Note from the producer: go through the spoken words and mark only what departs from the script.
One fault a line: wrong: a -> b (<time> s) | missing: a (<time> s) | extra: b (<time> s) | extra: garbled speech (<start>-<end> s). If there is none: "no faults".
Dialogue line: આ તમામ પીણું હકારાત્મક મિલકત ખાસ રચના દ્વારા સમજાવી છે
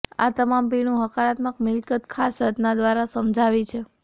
no faults